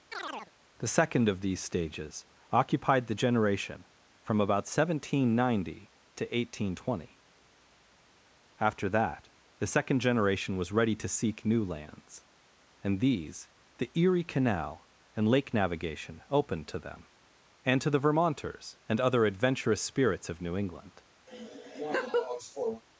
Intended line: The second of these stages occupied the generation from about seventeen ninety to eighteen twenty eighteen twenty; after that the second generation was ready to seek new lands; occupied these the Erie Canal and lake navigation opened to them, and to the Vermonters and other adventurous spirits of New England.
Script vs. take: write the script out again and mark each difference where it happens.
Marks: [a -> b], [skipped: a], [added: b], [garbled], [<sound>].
[chirp] The second of these stages occupied the generation from about seventeen ninety to eighteen twenty [skipped: eighteen twenty;] after that the second generation was ready to seek new lands; [occupied -> and] these the Erie Canal and lake navigation opened to them, and to the Vermonters and other adventurous spirits of New England. [laugh]